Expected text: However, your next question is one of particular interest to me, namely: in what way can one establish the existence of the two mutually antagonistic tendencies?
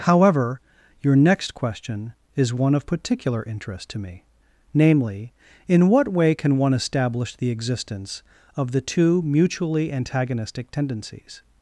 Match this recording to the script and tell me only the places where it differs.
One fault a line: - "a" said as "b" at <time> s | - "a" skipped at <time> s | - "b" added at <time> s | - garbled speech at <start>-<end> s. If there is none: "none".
none